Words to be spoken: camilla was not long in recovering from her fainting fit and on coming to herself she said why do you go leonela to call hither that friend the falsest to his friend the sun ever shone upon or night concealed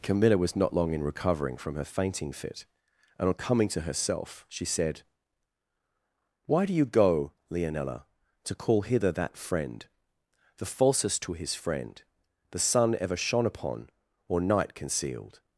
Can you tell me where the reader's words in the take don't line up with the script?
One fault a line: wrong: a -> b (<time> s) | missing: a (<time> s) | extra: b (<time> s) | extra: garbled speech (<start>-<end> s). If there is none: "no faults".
no faults